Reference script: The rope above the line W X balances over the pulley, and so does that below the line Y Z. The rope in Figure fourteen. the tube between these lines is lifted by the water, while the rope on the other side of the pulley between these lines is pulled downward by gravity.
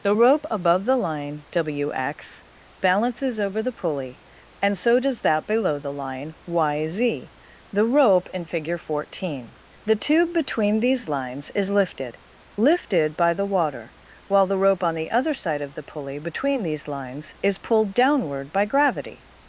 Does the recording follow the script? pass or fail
fail